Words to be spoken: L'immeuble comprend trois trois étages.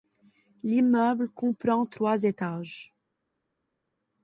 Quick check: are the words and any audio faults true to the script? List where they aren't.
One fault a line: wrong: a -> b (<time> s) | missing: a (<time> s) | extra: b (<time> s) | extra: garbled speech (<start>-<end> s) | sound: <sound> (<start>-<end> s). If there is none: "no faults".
missing: trois (2.2 s)